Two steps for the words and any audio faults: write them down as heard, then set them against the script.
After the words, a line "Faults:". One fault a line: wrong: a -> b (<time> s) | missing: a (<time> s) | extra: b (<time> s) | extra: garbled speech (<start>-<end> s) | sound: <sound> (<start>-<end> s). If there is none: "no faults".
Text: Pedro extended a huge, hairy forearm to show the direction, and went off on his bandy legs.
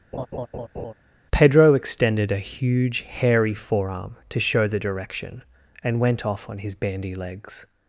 Pedro extended a huge, hairy forearm to show the direction, and went off on his bandy legs.
Faults:
sound: laugh (0.1-0.9 s)